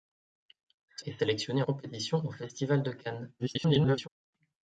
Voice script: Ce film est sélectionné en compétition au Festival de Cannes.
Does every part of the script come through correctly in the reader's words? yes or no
no